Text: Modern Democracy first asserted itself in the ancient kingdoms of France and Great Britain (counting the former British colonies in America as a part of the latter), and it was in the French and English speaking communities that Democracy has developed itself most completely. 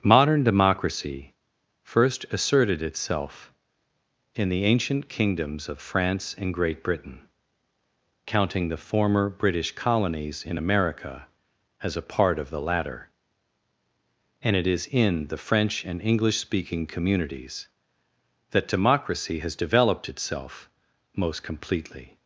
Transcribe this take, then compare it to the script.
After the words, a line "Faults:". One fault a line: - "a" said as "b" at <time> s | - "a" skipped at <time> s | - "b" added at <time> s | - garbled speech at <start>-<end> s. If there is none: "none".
Modern Democracy first asserted itself in the ancient kingdoms of France and Great Britain (counting the former British colonies in America as a part of the latter), and it is in the French and English speaking communities that Democracy has developed itself most completely.
Faults:
- "was" said as "is" at 14.7 s